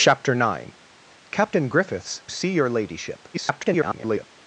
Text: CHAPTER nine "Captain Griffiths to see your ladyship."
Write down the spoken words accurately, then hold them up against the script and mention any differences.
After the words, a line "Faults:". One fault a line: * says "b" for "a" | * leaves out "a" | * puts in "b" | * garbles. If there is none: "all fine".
CHAPTER nine "Captain Griffiths see your ladyship." [garbled]
Faults:
* leaves out "to"
* garbles